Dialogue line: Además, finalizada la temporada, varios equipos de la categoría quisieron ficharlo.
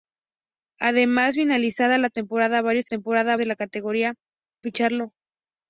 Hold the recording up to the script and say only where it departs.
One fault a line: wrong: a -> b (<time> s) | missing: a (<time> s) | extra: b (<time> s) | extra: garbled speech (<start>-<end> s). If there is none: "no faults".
wrong: equipos -> temporada (2.8 s)
missing: quisieron (4.1 s)